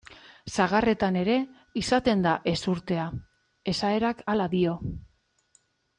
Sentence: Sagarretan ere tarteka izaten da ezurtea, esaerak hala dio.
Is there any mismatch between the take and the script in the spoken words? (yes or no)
yes